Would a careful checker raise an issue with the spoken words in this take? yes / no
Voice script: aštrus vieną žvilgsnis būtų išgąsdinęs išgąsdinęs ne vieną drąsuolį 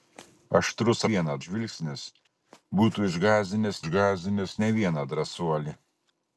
no